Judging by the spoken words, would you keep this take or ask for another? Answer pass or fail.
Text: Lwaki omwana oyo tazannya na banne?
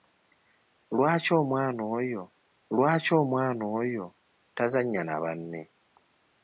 fail